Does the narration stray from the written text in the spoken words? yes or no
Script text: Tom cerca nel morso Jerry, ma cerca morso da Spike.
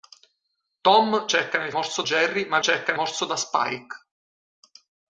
no